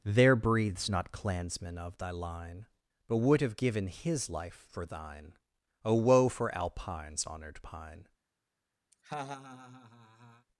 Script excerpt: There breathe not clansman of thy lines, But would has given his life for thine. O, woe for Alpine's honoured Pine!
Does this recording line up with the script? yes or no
no